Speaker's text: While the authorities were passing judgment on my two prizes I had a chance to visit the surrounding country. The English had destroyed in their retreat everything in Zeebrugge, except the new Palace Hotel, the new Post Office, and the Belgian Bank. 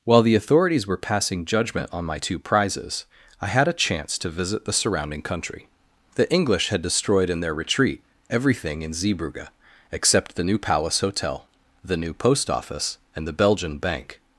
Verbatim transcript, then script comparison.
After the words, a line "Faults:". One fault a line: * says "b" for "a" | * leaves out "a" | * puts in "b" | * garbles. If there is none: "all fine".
While the authorities were passing judgment on my two prizes I had a chance to visit the surrounding country. The English had destroyed in their retreat everything in Zeebrugge, except the new Palace Hotel, the new Post Office, and the Belgian Bank.
Faults:
all fine